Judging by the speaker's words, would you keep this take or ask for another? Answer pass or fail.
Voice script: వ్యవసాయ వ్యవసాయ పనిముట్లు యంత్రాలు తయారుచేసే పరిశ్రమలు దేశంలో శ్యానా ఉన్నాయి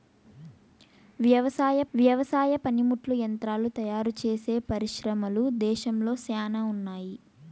pass